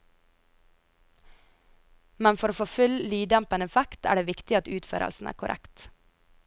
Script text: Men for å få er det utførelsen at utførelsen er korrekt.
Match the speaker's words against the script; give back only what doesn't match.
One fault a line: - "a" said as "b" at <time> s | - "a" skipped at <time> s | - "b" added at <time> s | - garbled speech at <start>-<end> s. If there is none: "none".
- "full lyddempende effekt" added at 2.7 s
- "utførelsen" said as "viktig" at 4.3 s